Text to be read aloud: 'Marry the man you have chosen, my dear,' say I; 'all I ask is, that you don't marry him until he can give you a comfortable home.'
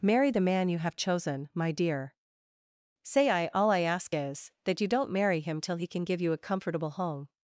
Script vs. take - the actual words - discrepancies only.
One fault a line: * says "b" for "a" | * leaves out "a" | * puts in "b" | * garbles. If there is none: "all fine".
* says "till" for "until"